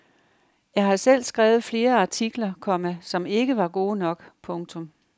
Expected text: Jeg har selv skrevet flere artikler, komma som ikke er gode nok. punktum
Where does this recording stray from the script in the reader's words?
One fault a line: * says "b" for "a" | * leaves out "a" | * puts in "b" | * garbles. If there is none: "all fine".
* says "var" for "er"